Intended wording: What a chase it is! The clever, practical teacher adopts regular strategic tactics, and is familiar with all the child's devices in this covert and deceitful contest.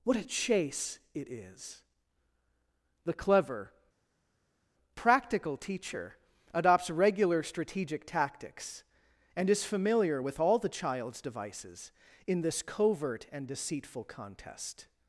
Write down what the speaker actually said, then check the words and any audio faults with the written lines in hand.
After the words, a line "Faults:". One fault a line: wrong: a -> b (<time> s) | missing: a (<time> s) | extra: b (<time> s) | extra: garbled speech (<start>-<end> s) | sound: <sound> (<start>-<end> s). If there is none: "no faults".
What a chase it is! The clever, practical teacher adopts regular strategic tactics, and is familiar with all the child's devices in this covert and deceitful contest.
Faults:
no faults